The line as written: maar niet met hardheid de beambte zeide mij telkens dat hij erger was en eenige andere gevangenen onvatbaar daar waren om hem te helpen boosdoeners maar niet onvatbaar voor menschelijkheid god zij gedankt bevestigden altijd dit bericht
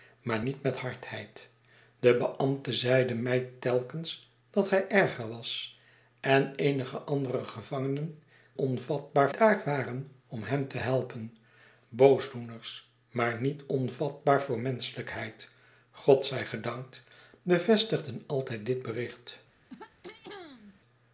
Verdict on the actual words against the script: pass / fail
pass